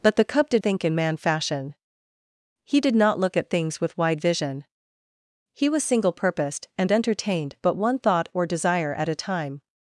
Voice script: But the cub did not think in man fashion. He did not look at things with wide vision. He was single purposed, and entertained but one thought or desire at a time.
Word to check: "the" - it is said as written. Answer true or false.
true